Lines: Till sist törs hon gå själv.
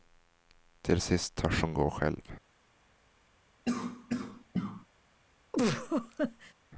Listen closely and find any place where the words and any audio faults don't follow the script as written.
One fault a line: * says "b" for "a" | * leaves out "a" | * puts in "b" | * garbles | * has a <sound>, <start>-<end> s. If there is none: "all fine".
* has a cough, 3.7-4.9 s
* has a laugh, 5.5-6.5 s